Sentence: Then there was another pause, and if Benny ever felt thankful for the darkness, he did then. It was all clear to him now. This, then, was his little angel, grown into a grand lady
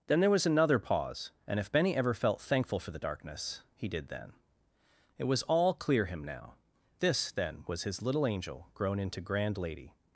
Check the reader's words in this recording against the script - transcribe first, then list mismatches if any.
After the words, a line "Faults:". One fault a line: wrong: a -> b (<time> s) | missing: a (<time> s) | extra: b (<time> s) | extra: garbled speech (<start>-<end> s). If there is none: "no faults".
Then there was another pause, and if Benny ever felt thankful for the darkness, he did then. It was all clear him now. This, then, was his little angel, grown into grand lady
Faults:
missing: to (6.0 s)
missing: a (9.2 s)